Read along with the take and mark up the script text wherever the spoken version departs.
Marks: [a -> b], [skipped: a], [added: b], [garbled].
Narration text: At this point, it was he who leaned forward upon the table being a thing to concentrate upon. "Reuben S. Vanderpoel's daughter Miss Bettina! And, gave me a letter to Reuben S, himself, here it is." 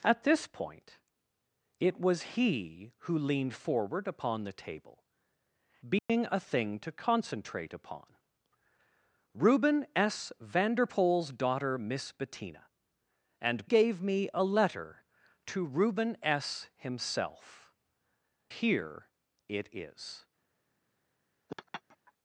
At this point, it was he who leaned forward upon the table being a thing to concentrate upon. "Reuben S. Vanderpoel's daughter Miss Bettina! And, gave me a letter to Reuben S, himself, here it is."